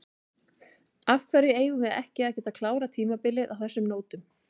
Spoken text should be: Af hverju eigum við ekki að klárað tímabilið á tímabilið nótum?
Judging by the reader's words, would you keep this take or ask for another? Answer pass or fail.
fail